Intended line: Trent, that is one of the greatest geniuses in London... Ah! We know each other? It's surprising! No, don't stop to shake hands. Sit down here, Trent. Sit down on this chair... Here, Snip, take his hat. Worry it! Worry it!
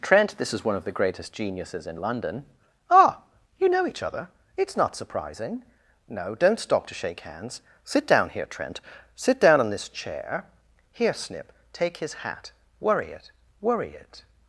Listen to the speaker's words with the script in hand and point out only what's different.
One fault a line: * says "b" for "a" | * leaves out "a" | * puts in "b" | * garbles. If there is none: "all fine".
* says "this" for "that"
* says "You" for "We"
* puts in "not"